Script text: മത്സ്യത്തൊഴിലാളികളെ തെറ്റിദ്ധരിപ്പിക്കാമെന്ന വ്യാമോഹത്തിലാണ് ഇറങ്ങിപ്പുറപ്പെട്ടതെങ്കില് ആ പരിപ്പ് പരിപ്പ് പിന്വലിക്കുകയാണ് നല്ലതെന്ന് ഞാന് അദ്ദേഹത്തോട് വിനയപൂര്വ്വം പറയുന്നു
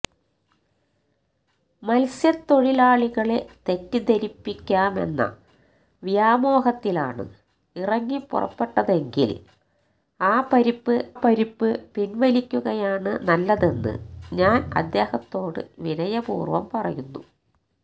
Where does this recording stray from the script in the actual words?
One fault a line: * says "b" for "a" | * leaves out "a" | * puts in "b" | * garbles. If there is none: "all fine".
all fine